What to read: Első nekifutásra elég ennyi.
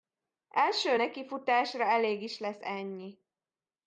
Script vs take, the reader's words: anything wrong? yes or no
yes